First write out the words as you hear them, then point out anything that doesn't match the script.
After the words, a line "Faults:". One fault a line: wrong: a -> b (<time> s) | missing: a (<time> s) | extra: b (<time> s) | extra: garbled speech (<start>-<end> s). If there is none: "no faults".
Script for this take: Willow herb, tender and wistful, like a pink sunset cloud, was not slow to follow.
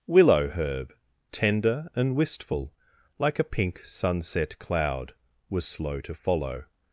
Willow herb, tender and wistful, like a pink sunset cloud, was slow to follow.
Faults:
missing: not (5.6 s)